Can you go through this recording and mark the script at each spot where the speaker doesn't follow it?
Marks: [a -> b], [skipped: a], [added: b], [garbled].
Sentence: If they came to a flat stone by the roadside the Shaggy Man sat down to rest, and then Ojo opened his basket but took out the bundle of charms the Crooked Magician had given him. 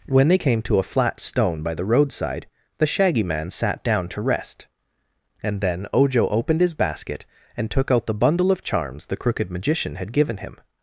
[If -> When] they came to a flat stone by the roadside the Shaggy Man sat down to rest, and then Ojo opened his basket [but -> and] took out the bundle of charms the Crooked Magician had given him.